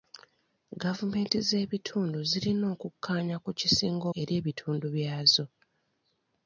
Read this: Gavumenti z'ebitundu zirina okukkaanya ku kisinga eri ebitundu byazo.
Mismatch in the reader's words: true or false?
false